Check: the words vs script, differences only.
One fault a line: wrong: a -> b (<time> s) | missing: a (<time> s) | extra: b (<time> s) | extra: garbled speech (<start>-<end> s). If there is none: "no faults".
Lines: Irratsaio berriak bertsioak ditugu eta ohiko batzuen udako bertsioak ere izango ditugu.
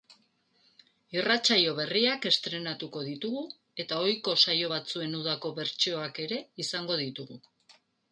wrong: bertsioak -> estreinatuko (2.3 s)
extra: saio (4.5 s)